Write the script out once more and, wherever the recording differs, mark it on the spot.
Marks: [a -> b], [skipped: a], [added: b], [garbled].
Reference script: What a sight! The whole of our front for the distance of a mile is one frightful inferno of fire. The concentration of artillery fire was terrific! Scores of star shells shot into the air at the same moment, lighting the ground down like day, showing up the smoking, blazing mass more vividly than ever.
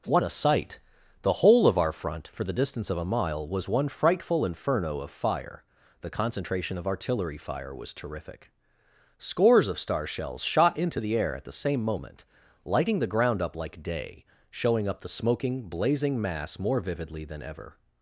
What a sight! The whole of our front for the distance of a mile [is -> was] one frightful inferno of fire. The concentration of artillery fire was terrific! Scores of star shells shot into the air at the same moment, lighting the ground [down -> up] like day, showing up the smoking, blazing mass more vividly than ever.